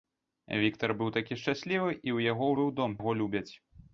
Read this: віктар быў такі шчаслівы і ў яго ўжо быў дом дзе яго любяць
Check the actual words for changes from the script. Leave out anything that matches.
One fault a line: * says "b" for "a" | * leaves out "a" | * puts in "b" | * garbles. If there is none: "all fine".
* leaves out "ўжо"
* leaves out "дзе"